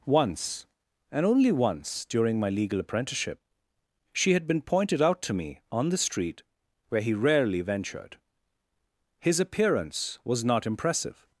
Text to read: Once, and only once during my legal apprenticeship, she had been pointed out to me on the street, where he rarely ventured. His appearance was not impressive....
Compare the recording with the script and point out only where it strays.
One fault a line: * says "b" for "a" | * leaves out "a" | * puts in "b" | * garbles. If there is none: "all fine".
all fine